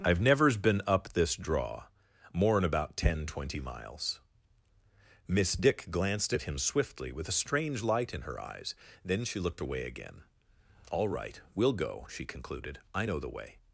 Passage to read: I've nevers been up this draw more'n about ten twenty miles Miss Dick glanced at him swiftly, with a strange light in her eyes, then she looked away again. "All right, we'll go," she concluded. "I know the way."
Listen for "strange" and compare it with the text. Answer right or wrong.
right